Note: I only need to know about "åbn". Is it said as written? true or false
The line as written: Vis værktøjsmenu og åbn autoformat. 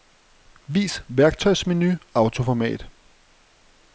false